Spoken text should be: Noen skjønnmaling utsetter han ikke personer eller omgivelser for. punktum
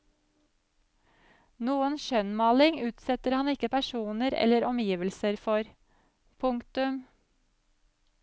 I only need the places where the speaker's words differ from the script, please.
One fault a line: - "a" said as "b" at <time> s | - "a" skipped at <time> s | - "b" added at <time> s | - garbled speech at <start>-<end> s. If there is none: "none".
none